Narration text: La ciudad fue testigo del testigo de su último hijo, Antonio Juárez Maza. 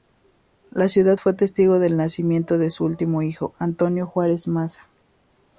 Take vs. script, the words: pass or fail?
fail